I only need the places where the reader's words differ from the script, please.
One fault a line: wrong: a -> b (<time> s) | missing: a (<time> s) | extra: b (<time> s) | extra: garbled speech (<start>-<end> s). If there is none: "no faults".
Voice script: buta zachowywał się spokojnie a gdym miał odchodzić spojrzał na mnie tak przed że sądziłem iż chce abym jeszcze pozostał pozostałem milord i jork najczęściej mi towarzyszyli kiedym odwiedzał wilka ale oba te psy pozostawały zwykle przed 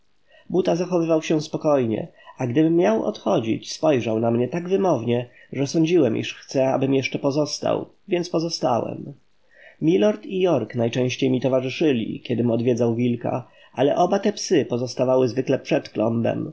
wrong: przed -> wymownie (4.7 s)
extra: więc (8.1 s)